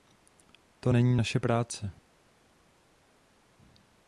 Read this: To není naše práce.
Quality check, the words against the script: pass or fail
pass